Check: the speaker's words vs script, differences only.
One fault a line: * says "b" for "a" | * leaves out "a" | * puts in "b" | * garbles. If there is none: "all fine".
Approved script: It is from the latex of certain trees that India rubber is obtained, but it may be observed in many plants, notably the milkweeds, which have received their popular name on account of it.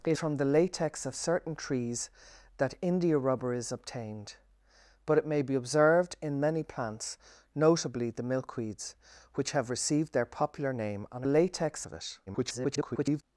* leaves out "is"
* says "latex" for "account"
* garbles